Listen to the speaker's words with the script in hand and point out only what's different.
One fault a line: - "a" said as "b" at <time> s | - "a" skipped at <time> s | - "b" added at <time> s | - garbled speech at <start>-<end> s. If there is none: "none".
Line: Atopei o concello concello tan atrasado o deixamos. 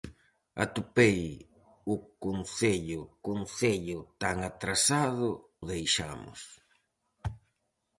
none